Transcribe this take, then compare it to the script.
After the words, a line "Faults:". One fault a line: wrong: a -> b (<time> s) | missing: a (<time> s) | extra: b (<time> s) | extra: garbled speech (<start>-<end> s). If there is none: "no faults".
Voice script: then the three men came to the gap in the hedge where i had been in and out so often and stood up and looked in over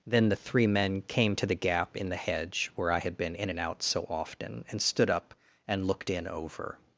then the three men came to the gap in the hedge where i had been in and out so often and stood up and looked in over
Faults:
no faults